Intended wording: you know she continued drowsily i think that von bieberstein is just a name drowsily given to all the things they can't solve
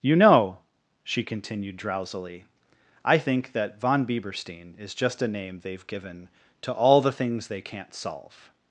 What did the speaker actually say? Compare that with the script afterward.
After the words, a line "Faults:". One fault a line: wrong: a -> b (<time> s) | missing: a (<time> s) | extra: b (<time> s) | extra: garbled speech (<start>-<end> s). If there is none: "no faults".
you know she continued drowsily i think that von bieberstein is just a name they've given to all the things they can't solve
Faults:
wrong: drowsily -> they've (5.6 s)